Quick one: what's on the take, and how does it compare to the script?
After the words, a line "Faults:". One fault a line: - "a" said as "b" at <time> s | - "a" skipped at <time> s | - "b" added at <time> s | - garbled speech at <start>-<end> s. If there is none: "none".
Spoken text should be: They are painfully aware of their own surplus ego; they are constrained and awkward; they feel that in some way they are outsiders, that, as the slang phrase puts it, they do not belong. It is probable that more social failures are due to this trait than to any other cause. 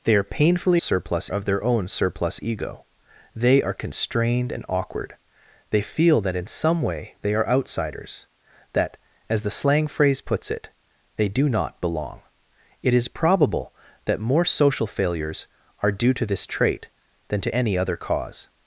They are painfully surplus of their own surplus ego; they are constrained and awkward; they feel that in some way they are outsiders, that, as the slang phrase puts it, they do not belong. It is probable that more social failures are due to this trait than to any other cause.
Faults:
- "aware" said as "surplus" at 0.8 s